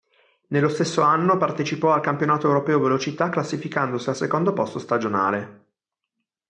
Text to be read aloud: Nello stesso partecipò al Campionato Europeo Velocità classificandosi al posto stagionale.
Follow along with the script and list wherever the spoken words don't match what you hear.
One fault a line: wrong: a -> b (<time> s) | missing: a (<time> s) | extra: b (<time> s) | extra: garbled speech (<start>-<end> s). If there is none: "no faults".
extra: anno (1.0 s)
extra: secondo (4.2 s)